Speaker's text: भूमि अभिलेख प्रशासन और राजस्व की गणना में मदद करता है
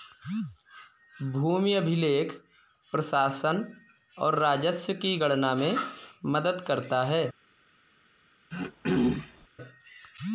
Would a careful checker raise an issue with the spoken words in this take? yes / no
no